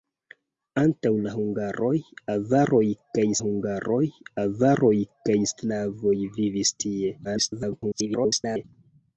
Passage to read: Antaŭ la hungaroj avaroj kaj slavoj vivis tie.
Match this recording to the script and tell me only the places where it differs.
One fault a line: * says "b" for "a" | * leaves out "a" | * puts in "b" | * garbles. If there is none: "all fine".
* puts in "hungaroj avaroj kaj"
* garbles